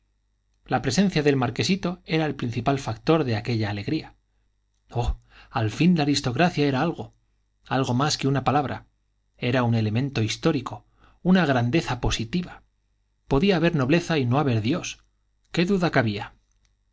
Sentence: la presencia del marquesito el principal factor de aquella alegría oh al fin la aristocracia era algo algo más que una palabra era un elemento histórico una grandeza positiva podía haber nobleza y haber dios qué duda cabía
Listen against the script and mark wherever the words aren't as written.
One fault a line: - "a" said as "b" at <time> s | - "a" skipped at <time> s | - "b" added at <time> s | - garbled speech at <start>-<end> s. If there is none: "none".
- "era" added at 2.0 s
- "no" added at 14.3 s